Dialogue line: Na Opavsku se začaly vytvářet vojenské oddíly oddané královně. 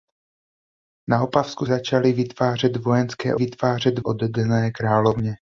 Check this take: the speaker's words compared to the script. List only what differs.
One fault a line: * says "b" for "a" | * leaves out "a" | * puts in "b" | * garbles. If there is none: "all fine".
* leaves out "se"
* says "vytvářet" for "oddíly"